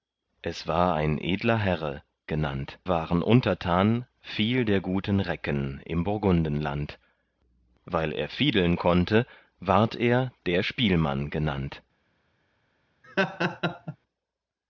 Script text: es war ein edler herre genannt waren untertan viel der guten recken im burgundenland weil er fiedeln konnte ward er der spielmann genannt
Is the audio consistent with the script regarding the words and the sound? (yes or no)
no